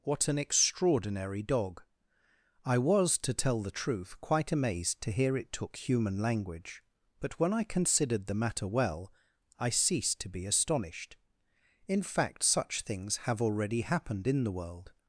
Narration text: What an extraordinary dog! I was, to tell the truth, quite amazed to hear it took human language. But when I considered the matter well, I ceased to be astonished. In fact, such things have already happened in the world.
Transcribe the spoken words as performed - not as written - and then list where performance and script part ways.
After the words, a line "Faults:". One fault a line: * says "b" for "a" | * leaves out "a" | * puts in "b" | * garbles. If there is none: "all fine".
What an extraordinary dog! I was, to tell the truth, quite amazed to hear it took human language. But when I considered the matter well, I ceased to be astonished. In fact, such things have already happened in the world.
Faults:
all fine